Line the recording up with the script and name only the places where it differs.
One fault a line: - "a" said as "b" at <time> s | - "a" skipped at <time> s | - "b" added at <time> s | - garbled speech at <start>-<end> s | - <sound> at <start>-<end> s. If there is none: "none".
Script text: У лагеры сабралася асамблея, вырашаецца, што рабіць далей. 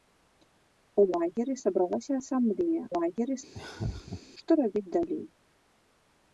- "вырашаецца" said as "лагеры" at 3.0 s
- laugh at 3.5-4.2 s